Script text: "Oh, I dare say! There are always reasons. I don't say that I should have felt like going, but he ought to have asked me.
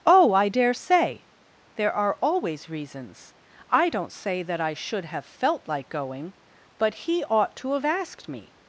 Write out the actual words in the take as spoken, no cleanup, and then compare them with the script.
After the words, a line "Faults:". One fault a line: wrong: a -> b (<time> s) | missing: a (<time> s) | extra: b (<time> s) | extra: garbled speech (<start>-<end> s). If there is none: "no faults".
"Oh, I dare say! There are always reasons. I don't say that I should have felt like going, but he ought to have asked me.
Faults:
no faults